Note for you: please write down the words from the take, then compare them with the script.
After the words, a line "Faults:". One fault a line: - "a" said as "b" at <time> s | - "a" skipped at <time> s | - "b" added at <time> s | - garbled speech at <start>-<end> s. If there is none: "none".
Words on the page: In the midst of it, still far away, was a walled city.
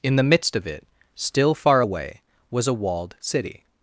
In the midst of it, still far away, was a walled city.
Faults:
none